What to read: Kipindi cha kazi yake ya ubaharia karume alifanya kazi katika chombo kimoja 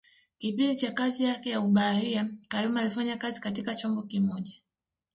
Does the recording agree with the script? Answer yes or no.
yes